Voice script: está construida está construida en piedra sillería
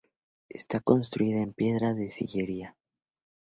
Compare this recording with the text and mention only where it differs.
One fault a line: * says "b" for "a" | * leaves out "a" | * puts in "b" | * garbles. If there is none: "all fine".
* leaves out "está construida"
* puts in "de"